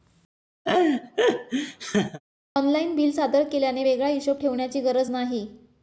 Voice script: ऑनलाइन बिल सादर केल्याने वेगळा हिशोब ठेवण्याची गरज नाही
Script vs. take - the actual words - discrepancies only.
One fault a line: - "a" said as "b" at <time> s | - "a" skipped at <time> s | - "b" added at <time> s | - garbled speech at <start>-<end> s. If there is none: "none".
none